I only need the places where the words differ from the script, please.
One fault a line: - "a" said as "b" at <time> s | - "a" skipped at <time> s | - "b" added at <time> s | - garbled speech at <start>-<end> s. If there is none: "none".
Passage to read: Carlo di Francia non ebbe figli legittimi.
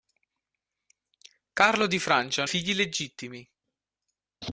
- "non ebbe" skipped at 2.5 s